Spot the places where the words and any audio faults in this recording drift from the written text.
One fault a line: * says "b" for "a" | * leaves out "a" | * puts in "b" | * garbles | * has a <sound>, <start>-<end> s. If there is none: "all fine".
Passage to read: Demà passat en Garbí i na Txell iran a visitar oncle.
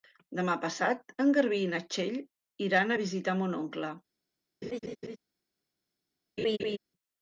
* puts in "mon"
* has a laugh, 4.6-5.2 s
* has a laugh, 6.4-6.8 s